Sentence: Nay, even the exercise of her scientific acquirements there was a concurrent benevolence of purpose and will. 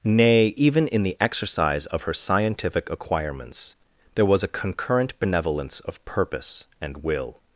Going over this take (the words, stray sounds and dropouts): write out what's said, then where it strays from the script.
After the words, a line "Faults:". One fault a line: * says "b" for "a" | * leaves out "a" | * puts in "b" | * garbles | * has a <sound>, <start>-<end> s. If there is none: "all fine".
Nay, even in the exercise of her scientific acquirements there was a concurrent benevolence of purpose and will.
Faults:
* puts in "in"